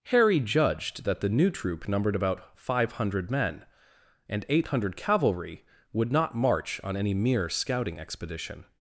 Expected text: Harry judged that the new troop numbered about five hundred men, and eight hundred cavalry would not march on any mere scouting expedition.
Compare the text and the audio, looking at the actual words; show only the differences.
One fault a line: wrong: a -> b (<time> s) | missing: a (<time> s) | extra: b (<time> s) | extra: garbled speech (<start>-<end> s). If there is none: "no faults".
no faults